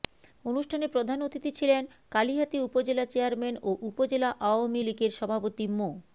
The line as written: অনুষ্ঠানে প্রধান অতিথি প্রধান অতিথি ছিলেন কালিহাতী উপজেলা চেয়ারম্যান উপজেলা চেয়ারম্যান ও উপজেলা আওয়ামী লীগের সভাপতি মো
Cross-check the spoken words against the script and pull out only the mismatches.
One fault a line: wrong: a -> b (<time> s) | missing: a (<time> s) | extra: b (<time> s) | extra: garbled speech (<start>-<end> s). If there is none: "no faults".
missing: প্রধান অতিথি (1.5 s)
missing: উপজেলা চেয়ারম্যান (3.5 s)